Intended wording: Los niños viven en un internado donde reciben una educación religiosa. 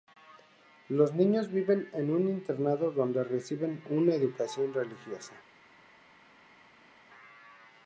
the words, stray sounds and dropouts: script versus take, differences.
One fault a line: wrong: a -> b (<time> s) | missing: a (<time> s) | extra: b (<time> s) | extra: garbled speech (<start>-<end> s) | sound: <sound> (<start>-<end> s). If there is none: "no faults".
no faults